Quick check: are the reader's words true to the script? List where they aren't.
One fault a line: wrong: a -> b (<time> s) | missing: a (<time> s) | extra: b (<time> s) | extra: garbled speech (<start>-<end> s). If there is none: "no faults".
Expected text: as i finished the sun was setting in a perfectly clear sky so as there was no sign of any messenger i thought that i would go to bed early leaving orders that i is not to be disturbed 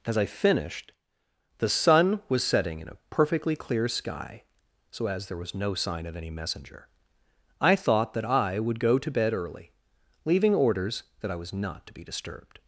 wrong: is -> was (11.3 s)